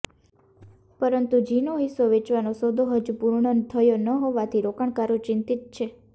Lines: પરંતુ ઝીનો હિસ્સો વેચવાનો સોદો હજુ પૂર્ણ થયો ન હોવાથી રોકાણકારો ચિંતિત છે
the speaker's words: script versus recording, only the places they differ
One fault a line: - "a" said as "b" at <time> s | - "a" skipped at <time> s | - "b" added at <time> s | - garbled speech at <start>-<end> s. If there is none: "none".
none